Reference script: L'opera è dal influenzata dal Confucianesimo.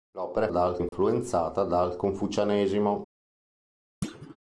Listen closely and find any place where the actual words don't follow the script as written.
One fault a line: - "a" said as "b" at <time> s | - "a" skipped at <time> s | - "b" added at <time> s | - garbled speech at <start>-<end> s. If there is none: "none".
none